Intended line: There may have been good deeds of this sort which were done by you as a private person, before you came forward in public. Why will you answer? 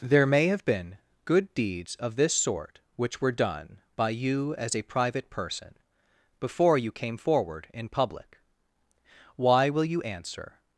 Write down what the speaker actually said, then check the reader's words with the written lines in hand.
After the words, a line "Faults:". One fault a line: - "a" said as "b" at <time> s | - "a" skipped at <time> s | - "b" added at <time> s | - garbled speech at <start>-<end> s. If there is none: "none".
There may have been good deeds of this sort which were done by you as a private person, before you came forward in public. Why will you answer?
Faults:
none